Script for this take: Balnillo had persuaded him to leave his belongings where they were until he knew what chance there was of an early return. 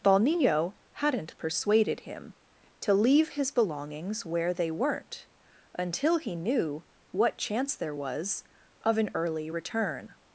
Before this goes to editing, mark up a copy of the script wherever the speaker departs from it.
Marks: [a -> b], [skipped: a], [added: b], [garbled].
Balnillo [had -> hadn't] persuaded him to leave his belongings where they [were -> weren't] until he knew what chance there was of an early return.